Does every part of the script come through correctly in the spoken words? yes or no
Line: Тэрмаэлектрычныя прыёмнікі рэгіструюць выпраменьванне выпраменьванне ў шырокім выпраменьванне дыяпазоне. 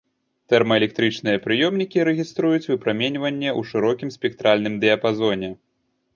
no